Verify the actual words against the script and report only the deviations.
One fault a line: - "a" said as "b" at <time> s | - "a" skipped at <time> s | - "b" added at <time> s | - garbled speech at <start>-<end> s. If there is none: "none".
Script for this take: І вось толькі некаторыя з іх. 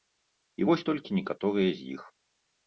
none